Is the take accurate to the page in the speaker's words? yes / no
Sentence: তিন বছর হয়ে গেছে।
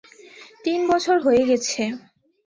yes